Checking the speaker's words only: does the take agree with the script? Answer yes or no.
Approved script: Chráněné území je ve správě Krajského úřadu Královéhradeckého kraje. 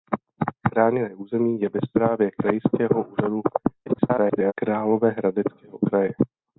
no